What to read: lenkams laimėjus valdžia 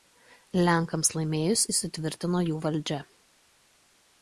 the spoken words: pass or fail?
fail